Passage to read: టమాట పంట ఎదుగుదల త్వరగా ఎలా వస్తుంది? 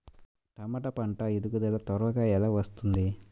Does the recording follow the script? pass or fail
pass